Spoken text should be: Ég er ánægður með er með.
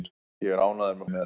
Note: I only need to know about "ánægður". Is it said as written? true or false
true